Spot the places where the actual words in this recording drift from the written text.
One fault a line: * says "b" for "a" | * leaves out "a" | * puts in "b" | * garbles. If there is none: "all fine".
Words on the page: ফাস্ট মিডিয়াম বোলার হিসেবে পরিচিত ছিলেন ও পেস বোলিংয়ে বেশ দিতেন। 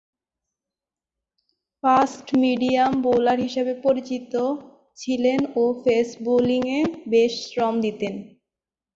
* puts in "শ্রম"